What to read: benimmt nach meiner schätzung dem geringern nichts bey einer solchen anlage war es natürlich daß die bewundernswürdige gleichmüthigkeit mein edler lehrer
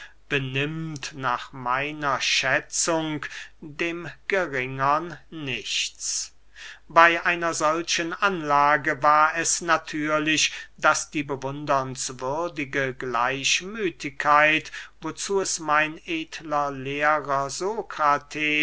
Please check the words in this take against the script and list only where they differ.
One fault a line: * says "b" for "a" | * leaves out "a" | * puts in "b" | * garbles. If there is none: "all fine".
* puts in "wozu es"